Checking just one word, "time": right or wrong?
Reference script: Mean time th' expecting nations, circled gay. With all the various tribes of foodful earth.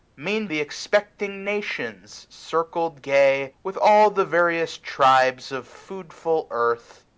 wrong